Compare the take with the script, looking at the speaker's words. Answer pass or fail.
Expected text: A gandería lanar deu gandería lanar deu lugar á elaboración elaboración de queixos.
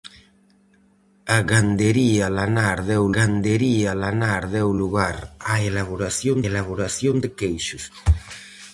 pass